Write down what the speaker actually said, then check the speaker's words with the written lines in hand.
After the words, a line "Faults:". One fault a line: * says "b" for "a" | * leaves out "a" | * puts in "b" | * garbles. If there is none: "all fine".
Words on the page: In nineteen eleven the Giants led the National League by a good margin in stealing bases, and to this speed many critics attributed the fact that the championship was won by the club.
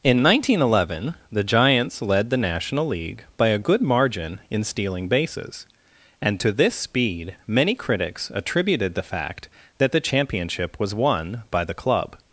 In nineteen eleven the Giants led the National League by a good margin in stealing bases, and to this speed many critics attributed the fact that the championship was won by the club.
Faults:
all fine